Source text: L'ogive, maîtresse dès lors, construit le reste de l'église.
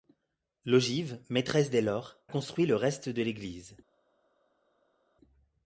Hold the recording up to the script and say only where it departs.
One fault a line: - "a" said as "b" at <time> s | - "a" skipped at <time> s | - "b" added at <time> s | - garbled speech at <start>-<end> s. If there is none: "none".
none